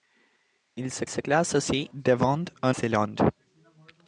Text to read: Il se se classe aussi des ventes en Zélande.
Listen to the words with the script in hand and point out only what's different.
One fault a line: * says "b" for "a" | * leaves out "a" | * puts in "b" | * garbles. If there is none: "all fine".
all fine